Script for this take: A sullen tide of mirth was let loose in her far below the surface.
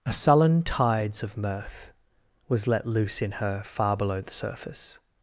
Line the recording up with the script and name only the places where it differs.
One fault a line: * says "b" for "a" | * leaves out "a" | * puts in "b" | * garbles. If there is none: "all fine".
* says "tides" for "tide"